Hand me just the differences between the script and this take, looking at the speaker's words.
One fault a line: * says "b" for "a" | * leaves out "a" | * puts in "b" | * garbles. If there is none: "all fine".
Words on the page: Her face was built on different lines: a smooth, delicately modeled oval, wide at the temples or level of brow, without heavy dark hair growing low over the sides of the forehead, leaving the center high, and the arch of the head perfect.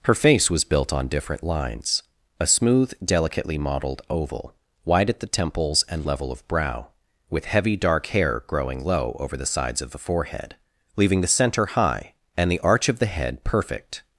* says "and" for "or"
* says "with" for "without"